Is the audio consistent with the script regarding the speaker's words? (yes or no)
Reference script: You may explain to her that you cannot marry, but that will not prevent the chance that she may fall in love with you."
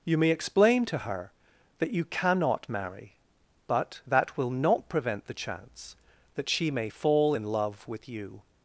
yes